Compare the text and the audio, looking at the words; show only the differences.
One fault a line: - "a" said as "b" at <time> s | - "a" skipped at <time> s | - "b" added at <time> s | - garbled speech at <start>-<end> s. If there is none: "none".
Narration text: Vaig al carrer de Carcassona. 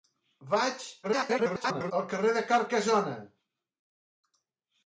- garbled speech at 1.0-1.9 s